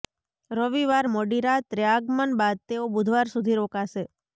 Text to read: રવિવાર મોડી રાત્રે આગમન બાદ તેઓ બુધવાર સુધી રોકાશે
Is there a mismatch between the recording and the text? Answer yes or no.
no